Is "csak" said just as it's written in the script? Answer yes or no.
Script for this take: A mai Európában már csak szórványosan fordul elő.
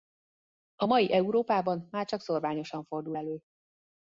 yes